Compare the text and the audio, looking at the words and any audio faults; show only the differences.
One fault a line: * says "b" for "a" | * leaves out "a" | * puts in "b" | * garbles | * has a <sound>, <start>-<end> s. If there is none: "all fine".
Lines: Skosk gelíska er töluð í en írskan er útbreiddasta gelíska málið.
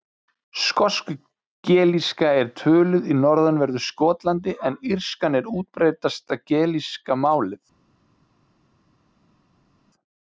* puts in "norðanverðu Skotlandi"